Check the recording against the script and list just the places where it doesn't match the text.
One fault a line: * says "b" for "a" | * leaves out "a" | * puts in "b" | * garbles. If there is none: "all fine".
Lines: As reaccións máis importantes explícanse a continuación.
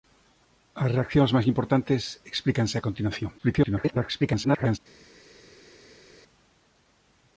* garbles